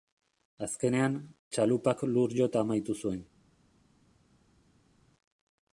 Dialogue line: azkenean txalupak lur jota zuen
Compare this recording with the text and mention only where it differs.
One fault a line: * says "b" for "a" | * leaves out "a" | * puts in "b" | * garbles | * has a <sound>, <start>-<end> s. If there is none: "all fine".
* puts in "amaitu"